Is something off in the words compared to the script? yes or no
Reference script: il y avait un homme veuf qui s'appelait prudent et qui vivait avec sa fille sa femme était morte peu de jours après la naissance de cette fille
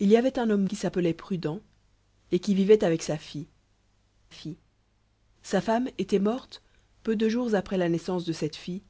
yes